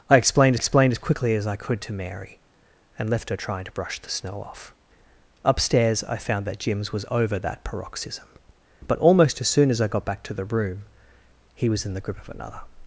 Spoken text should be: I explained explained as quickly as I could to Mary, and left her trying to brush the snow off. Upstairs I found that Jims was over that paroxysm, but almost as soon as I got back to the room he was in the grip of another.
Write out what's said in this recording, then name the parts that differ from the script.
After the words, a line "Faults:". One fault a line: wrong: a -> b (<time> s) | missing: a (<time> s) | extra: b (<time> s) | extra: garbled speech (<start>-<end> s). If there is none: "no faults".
I explained explained as quickly as I could to Mary, and left her trying to brush the snow off. Upstairs I found that Jims was over that paroxysm, but almost as soon as I got back to the room he was in the grip of another.
Faults:
no faults